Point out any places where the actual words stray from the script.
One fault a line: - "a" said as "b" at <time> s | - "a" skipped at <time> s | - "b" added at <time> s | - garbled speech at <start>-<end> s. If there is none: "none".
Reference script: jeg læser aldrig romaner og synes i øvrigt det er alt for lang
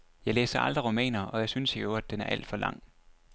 - "jeg" added at 1.4 s
- "det" said as "den" at 2.1 s